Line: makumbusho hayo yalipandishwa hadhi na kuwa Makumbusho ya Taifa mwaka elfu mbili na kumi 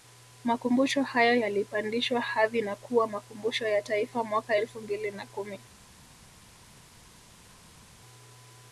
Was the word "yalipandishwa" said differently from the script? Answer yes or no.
no